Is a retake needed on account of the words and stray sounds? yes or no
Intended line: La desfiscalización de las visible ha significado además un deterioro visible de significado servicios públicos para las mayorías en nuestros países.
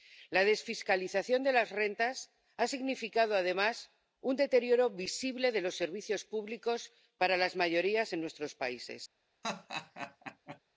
yes